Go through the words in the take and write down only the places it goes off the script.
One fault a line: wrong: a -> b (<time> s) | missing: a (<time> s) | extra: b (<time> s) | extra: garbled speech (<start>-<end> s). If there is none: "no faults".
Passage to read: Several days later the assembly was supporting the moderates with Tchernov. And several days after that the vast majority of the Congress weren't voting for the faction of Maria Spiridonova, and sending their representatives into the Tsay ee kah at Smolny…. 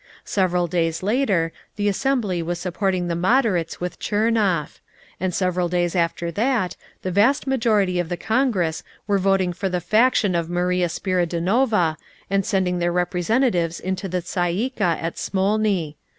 wrong: weren't -> were (9.1 s)